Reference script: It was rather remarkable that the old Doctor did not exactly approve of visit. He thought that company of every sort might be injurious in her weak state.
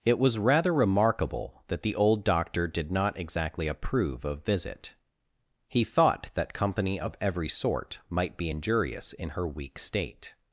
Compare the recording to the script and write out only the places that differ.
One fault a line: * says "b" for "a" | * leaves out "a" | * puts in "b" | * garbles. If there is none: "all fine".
all fine